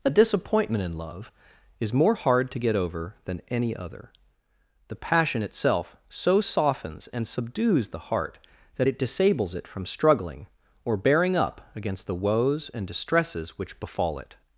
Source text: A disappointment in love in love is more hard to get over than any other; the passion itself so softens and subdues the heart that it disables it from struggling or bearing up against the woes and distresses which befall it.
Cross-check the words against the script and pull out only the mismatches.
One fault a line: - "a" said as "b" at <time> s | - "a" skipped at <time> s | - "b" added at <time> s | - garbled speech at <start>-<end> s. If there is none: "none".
- "in love" skipped at 1.3 s